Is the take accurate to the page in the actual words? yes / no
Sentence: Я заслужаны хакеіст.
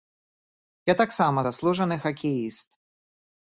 no